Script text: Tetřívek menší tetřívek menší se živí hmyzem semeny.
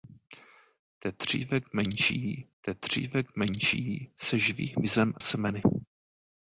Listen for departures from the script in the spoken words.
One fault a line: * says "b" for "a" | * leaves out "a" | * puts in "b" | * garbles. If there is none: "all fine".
all fine